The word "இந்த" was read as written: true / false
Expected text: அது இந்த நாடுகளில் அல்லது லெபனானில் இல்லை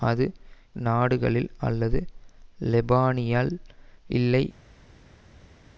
false